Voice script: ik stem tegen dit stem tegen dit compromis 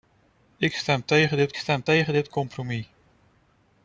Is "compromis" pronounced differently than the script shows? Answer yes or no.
no